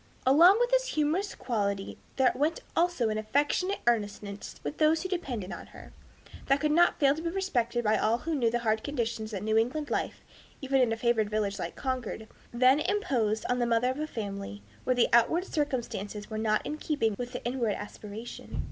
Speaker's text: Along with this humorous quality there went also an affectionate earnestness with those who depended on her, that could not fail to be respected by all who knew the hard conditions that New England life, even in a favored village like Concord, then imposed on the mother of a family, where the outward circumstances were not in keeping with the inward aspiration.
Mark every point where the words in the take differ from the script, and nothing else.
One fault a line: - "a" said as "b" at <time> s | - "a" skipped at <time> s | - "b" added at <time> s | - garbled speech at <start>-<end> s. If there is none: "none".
none